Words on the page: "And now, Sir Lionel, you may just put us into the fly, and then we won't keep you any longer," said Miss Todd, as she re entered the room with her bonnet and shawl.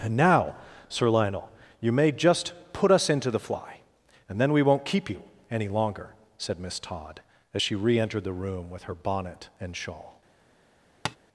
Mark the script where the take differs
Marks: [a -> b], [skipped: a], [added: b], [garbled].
"And now, Sir Lionel, you may just put us into the fly, and then we won't keep you any longer," said Miss Todd, as she re entered the room with her bonnet and shawl.